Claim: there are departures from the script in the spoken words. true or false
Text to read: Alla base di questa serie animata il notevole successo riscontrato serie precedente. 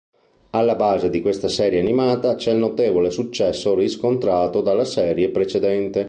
true